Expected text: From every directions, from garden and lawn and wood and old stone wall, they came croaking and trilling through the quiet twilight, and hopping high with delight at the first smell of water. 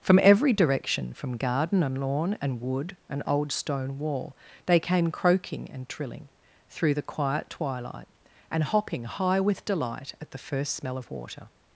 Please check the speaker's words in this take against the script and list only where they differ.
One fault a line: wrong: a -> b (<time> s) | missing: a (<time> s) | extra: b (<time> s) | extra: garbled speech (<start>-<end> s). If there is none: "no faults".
wrong: directions -> direction (0.5 s)